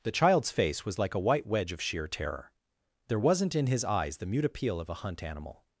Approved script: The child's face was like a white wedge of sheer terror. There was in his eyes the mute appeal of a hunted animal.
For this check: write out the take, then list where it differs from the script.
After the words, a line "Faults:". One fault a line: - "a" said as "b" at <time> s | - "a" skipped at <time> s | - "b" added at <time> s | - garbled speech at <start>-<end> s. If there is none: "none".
The child's face was like a white wedge of sheer terror. There wasn't in his eyes the mute appeal of a hunt animal.
Faults:
- "was" said as "wasn't" at 3.2 s
- "hunted" said as "hunt" at 5.0 s